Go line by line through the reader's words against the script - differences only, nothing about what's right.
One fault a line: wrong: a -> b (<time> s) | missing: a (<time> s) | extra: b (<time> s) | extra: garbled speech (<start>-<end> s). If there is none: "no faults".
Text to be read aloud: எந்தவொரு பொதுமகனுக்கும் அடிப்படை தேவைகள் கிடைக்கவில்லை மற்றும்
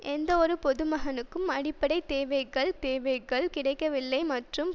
extra: தேவைகள் (2.8 s)